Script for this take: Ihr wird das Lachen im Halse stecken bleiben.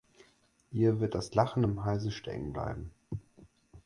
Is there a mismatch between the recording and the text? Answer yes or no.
no